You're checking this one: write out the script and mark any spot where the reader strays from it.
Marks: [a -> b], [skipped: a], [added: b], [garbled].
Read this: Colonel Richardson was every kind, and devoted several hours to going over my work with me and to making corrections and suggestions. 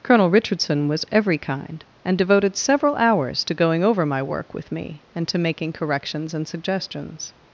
Colonel Richardson was every kind, and devoted several hours to going over my work with me and to making corrections and suggestions.